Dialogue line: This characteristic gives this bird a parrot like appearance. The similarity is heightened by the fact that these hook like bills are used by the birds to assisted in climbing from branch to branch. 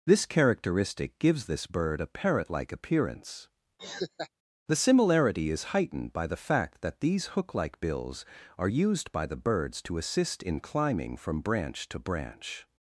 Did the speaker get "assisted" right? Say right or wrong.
wrong